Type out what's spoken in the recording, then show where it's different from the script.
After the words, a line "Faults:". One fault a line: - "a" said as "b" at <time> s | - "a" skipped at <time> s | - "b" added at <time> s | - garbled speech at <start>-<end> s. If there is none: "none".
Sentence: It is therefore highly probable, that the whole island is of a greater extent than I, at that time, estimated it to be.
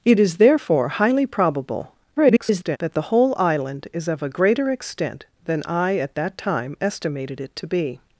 It is therefore highly probable, [garbled] that the whole island is of a greater extent than I, at that time, estimated it to be.
Faults:
- garbled speech at 2.2-2.8 s